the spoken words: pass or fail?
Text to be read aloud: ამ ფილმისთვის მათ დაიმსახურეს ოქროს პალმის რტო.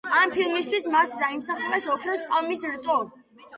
pass